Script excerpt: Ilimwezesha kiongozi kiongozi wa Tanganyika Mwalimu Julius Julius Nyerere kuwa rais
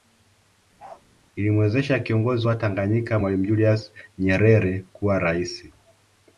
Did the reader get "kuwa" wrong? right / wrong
right